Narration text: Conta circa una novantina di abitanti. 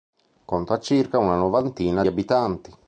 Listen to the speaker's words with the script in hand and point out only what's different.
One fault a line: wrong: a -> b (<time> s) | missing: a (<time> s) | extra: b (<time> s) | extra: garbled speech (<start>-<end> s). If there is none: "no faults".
missing: di (2.0 s)